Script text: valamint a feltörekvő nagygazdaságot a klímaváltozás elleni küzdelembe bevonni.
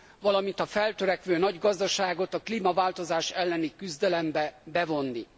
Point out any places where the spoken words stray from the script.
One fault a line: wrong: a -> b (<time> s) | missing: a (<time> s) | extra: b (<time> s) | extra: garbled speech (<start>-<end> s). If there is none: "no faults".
no faults